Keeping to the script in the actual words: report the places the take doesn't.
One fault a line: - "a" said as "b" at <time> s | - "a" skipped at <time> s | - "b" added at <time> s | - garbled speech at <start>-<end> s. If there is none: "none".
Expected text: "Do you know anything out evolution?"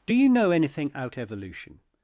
none